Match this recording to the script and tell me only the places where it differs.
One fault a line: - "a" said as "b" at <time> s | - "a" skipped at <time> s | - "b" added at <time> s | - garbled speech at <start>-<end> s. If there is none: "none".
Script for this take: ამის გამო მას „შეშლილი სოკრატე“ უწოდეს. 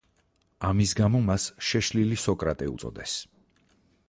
none